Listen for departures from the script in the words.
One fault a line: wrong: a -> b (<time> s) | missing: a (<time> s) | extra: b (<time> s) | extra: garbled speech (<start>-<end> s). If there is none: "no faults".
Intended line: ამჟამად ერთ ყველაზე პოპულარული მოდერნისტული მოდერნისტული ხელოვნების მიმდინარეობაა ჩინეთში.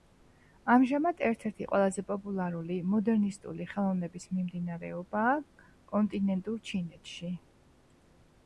extra: ერთი (1.5 s)
missing: მოდერნისტული (3.7 s)
extra: კონტინენტურ (5.9 s)